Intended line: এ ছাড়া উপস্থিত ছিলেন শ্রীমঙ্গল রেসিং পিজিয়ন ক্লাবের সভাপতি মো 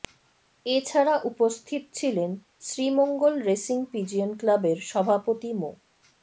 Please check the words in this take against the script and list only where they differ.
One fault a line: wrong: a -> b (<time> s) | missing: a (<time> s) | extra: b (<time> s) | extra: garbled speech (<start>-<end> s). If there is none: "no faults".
no faults